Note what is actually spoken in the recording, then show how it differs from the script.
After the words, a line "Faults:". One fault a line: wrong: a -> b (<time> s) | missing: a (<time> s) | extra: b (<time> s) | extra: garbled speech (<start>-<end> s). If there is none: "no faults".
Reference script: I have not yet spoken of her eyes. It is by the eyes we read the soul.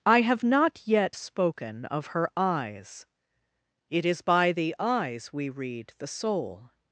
I have not yet spoken of her eyes. It is by the eyes we read the soul.
Faults:
no faults